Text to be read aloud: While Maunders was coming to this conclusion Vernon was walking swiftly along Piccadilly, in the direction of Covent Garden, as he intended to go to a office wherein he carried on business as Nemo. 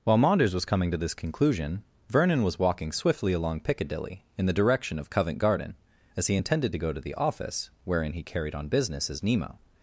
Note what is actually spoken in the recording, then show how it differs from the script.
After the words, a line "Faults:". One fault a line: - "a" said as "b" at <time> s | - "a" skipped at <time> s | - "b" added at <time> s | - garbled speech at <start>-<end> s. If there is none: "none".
While Maunders was coming to this conclusion Vernon was walking swiftly along Piccadilly, in the direction of Covent Garden, as he intended to go to the office wherein he carried on business as Nemo.
Faults:
- "a" said as "the" at 7.0 s